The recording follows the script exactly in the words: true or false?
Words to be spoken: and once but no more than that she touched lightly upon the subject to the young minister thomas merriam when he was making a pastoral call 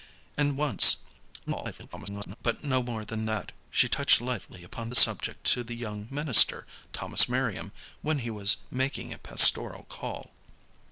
false